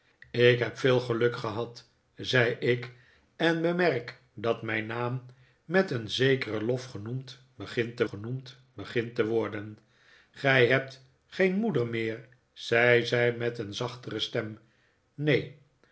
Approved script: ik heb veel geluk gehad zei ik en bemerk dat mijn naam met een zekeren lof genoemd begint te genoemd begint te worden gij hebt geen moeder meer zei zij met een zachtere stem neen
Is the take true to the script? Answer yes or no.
yes